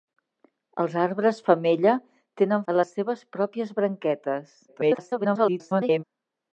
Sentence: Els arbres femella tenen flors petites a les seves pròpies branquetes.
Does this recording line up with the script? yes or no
no